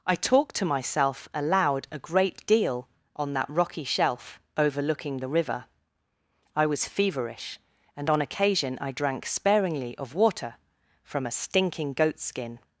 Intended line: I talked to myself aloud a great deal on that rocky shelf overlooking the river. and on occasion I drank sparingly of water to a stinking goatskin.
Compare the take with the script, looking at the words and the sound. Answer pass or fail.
fail